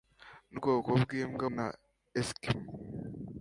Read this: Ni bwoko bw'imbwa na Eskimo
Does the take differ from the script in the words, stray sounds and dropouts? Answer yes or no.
no